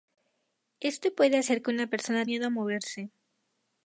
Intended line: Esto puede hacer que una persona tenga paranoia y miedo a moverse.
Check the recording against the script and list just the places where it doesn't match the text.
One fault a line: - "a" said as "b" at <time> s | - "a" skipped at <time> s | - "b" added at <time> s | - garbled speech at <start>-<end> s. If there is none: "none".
- "tenga paranoia y" skipped at 2.2 s